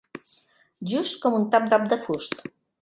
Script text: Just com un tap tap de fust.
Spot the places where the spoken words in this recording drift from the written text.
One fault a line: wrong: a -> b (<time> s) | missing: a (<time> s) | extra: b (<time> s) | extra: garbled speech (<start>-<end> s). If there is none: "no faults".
no faults